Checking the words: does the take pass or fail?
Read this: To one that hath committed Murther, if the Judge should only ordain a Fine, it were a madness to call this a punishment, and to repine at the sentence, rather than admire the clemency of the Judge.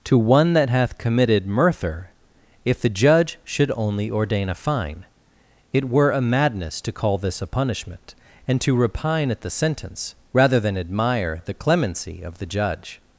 pass